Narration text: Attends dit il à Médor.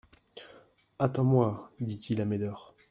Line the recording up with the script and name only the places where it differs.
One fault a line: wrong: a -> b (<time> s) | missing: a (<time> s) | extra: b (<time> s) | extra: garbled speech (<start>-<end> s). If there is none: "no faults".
extra: moi (1.2 s)